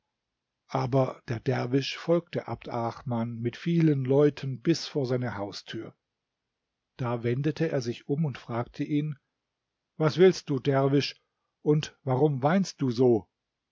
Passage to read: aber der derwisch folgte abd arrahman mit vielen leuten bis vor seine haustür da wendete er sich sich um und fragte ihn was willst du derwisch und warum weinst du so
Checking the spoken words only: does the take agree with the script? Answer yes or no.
no